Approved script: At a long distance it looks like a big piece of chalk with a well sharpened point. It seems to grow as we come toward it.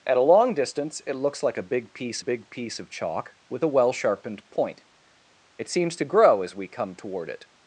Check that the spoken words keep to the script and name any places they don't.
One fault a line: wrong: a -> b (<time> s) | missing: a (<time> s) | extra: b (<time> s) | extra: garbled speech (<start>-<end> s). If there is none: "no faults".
extra: big piece (2.2 s)